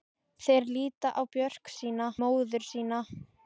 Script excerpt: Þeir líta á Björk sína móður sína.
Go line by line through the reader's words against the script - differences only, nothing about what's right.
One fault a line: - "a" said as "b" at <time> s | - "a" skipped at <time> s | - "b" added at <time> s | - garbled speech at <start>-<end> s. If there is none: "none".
none